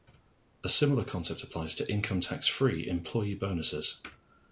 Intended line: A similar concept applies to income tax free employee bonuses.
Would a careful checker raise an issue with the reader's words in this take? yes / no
no